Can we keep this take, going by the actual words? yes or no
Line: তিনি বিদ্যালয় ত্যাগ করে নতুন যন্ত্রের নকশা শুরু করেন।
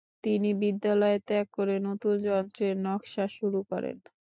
yes